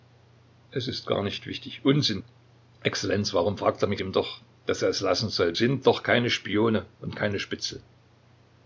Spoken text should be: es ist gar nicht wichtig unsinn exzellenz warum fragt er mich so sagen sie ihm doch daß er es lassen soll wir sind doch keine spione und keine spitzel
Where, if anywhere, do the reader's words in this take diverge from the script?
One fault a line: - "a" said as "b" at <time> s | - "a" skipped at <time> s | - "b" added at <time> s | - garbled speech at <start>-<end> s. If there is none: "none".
- "so sagen sie" skipped at 4.0 s
- "wir" skipped at 5.6 s